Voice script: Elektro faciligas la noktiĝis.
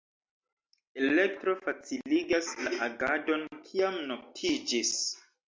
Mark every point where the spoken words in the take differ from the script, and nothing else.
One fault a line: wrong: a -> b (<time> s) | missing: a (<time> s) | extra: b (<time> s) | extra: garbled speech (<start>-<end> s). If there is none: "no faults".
extra: agadon kiam (2.9 s)